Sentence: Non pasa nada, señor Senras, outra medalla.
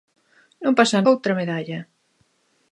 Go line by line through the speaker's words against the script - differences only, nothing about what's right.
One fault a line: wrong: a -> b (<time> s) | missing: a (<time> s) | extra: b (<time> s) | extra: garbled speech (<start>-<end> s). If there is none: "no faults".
missing: nada señor Senras (1.0 s)